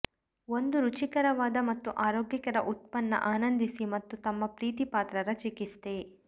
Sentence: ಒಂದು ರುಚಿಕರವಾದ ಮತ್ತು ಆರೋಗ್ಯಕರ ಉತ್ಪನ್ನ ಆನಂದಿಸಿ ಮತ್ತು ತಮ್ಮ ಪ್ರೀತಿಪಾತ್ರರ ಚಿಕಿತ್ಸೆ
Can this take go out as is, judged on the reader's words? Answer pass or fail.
pass